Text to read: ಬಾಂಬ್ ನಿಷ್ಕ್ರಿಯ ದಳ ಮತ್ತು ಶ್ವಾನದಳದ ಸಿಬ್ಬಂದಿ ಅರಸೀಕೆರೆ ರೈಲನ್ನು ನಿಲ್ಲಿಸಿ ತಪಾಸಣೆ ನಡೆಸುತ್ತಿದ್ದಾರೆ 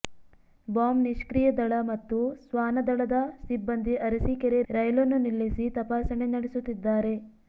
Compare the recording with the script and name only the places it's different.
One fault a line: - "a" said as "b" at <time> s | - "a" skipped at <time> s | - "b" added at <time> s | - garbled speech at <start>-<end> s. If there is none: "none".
none